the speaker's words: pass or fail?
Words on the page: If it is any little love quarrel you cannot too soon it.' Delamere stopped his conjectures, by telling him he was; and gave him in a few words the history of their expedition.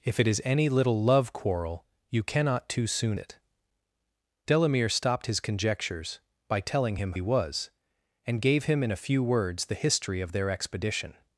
pass